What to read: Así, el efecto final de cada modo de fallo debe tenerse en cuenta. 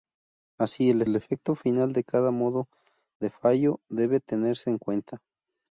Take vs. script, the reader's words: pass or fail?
fail